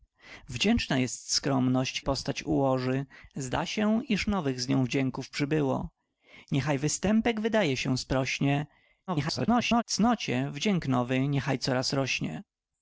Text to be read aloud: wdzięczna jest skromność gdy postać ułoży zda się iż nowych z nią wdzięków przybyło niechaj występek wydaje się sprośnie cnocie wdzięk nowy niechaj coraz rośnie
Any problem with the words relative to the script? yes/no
yes